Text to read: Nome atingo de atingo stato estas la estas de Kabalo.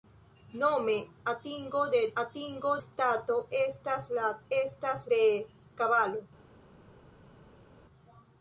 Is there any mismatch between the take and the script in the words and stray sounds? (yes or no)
no